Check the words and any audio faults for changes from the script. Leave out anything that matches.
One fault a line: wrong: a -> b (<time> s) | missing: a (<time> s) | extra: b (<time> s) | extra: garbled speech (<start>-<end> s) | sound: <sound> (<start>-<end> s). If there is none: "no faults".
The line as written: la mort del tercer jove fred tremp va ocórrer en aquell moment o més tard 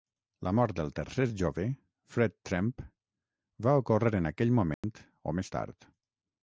sound: dropout (4.7-4.8 s)